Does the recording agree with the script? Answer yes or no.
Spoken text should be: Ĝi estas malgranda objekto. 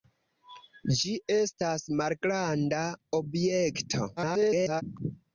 no